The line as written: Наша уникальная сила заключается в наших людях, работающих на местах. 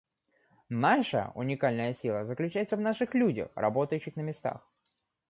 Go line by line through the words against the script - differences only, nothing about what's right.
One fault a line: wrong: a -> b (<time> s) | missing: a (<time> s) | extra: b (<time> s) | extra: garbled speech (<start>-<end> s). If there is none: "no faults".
no faults